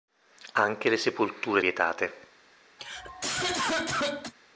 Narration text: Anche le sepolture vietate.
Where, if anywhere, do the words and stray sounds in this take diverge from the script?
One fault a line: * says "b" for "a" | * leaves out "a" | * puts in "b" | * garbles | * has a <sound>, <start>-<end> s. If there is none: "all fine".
* has a cough, 2.8-4.3 s